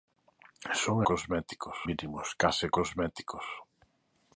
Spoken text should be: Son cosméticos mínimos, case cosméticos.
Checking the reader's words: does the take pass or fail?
pass